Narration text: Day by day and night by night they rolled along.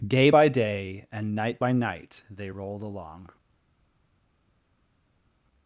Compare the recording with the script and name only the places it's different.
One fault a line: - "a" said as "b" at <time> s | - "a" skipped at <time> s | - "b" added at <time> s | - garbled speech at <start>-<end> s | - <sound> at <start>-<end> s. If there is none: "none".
none